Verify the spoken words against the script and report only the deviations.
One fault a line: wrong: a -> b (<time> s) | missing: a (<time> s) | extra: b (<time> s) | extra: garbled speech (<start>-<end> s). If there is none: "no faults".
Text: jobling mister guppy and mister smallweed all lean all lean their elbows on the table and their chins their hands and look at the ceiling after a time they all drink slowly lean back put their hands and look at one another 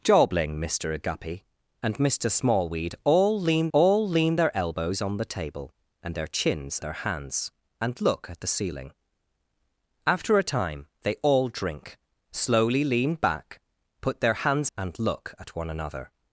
no faults